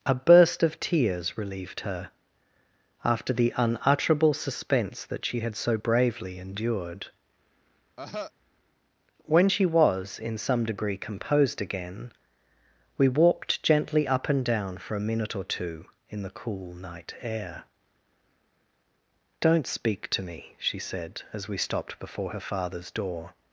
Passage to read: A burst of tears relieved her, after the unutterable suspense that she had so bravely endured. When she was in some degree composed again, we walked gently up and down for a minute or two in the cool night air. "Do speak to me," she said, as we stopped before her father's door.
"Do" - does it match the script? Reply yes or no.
no